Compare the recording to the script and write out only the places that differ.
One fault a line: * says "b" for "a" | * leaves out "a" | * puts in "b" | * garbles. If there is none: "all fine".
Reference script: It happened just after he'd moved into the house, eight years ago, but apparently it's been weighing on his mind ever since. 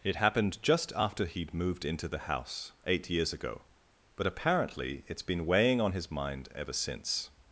all fine